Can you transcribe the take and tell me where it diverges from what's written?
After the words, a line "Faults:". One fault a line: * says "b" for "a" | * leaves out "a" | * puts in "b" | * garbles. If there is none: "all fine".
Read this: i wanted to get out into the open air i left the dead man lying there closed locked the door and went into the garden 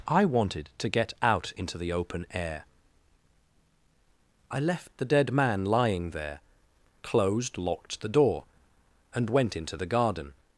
i wanted to get out into the open air i left the dead man lying there closed locked the door and went into the garden
Faults:
all fine